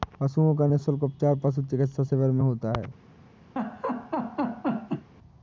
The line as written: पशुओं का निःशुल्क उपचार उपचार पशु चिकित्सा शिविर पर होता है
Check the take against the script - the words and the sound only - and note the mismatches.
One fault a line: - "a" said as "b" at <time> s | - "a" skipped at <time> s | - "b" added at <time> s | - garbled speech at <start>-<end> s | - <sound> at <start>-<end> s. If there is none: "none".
- "उपचार" skipped at 1.4 s
- "पर" said as "में" at 2.3 s
- laugh at 3.6-5.1 s